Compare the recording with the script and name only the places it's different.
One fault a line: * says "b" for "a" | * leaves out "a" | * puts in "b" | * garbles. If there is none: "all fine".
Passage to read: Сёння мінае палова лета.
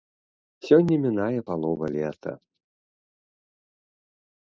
all fine